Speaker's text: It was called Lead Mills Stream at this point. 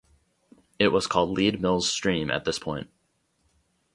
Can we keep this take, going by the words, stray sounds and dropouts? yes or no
yes